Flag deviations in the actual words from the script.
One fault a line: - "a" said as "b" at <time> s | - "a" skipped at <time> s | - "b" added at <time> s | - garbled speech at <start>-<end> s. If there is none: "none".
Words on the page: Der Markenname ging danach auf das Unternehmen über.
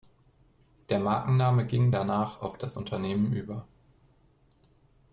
none